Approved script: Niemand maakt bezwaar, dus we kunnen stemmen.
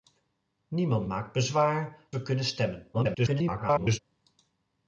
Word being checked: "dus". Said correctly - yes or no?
no